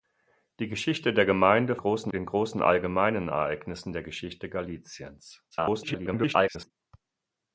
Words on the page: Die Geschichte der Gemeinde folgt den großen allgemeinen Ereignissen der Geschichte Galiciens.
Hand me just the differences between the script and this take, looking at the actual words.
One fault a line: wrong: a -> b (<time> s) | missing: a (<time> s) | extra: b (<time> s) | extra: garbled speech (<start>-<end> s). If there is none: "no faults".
wrong: folgt -> großen (1.8 s)
extra: garbled speech (5.5-6.7 s)